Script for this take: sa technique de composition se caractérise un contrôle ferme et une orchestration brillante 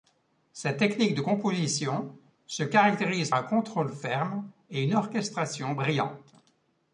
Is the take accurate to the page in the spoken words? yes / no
yes